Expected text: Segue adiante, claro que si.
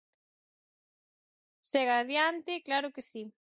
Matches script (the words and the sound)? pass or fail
pass